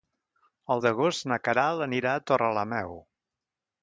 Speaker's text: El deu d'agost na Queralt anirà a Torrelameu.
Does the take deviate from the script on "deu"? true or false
true